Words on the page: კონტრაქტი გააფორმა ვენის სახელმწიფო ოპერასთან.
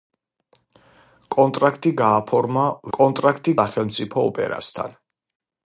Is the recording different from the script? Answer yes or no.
yes